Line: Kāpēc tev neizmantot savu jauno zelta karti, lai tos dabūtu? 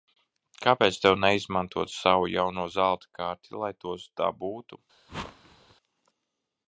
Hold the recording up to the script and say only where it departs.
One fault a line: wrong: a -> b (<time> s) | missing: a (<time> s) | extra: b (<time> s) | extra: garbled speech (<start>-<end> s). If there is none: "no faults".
no faults